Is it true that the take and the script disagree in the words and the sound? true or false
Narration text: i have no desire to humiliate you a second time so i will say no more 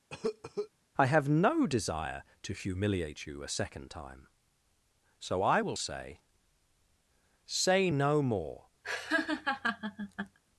true